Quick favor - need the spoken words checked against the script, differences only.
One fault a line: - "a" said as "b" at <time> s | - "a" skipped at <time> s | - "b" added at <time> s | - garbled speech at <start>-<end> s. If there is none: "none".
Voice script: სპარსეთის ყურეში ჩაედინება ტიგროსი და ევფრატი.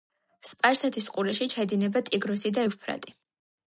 none